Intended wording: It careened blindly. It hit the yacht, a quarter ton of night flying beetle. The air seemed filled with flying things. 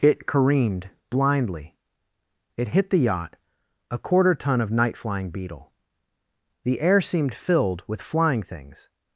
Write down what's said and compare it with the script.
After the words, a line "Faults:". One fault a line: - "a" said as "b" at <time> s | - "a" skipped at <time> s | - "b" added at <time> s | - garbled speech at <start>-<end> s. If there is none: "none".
It careened blindly. It hit the yacht, a quarter ton of night flying beetle. The air seemed filled with flying things.
Faults:
none